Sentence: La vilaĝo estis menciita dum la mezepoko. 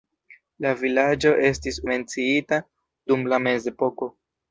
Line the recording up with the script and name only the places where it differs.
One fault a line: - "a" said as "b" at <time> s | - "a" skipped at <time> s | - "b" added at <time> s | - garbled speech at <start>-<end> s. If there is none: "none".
none